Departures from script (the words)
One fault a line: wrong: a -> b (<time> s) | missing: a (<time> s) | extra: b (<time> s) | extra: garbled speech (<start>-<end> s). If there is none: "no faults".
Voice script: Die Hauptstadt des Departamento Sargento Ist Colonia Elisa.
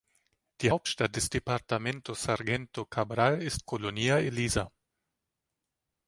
extra: Cabral (2.8 s)